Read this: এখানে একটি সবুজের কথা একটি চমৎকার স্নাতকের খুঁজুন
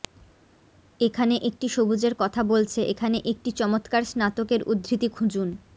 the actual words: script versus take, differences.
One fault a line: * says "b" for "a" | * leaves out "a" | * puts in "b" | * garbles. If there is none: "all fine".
* puts in "বলছে এখানে"
* puts in "উদ্ধৃতি"